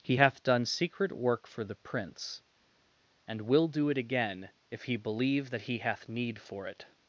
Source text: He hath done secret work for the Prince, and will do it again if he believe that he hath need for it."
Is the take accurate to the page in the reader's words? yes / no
yes